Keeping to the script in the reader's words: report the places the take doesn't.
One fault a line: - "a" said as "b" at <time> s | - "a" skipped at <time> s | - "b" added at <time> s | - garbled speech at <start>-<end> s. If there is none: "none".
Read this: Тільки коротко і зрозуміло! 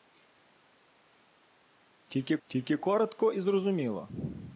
- "тільки" added at 2.5 s